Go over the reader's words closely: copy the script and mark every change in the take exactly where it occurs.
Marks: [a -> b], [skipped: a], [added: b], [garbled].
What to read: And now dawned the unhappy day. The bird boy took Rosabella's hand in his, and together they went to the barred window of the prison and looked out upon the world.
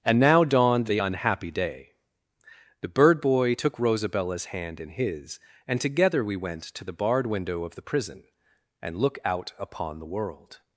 And now dawned the unhappy day. The bird boy took Rosabella's hand in his, and together [they -> we] went to the barred window of the prison and [looked -> look] out upon the world.